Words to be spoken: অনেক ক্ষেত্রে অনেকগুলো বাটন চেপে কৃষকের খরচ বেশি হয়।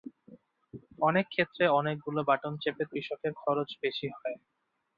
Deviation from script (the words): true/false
false